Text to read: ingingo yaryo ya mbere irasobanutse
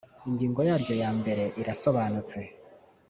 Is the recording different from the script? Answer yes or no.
no